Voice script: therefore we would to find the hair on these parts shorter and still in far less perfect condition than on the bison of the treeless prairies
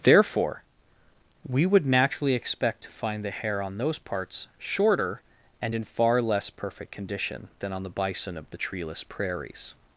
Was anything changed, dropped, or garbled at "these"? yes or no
yes